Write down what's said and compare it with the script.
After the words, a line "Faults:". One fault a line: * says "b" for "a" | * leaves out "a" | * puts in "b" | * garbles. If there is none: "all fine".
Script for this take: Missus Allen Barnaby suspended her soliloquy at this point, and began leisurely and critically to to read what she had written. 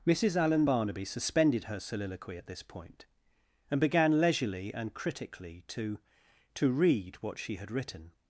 Missus Allen Barnaby suspended her soliloquy at this point, and began leisurely and critically to to read what she had written.
Faults:
all fine